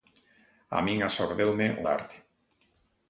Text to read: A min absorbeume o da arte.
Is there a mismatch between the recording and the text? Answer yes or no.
no